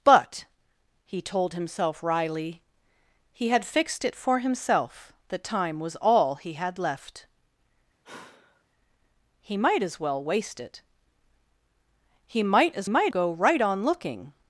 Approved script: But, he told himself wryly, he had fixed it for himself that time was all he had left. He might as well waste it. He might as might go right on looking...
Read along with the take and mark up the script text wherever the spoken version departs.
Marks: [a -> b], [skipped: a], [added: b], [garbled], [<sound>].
But, he told himself wryly, he had fixed it for himself that time was all he had left. [sigh] He might as well waste it. He might as might go right on looking...